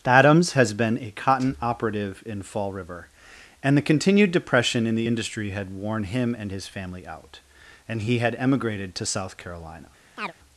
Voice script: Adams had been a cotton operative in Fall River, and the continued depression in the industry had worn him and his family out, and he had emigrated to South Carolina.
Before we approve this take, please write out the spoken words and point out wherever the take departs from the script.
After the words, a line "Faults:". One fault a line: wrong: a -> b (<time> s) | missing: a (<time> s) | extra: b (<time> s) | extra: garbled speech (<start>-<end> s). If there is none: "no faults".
Adams has been a cotton operative in Fall River, and the continued depression in the industry had worn him and his family out, and he had emigrated to South Carolina.
Faults:
wrong: had -> has (0.5 s)